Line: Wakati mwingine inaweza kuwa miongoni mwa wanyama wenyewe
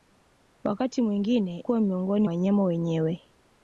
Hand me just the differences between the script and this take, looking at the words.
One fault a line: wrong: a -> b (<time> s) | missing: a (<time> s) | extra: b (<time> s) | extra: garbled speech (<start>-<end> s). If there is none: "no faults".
missing: inaweza (1.6 s)
missing: mwa (2.3 s)